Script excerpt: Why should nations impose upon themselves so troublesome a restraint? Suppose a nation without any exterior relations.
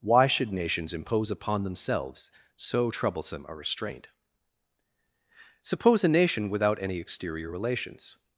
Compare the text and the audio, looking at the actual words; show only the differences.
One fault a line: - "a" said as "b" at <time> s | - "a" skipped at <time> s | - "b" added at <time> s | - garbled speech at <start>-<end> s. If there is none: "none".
none